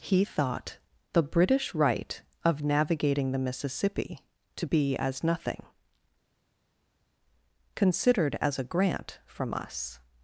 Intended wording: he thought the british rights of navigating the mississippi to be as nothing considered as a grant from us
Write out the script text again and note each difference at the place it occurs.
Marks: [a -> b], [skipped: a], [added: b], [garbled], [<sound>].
he thought the british [rights -> right] of navigating the mississippi to be as nothing considered as a grant from us